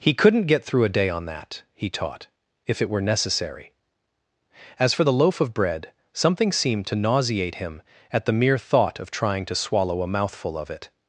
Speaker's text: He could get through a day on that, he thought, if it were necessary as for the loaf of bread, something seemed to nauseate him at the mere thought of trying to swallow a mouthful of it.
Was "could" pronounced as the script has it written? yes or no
no